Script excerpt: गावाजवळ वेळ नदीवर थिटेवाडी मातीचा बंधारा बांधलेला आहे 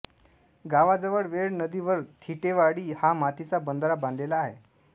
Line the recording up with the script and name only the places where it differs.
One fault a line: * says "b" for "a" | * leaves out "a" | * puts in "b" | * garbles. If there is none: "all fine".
* puts in "हा"